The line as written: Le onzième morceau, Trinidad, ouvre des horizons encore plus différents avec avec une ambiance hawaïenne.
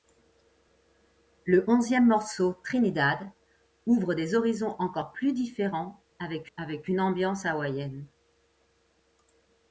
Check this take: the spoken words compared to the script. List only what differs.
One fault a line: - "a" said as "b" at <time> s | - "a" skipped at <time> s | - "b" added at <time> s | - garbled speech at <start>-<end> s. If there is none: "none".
none